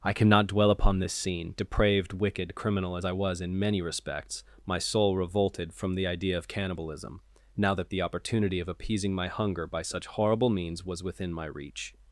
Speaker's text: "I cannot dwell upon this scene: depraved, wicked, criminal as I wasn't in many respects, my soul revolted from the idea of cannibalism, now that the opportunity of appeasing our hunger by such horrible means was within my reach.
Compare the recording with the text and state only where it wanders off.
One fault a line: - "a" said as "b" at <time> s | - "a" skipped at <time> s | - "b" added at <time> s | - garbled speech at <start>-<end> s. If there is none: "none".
- "wasn't" said as "was" at 3.1 s
- "our" said as "my" at 9.1 s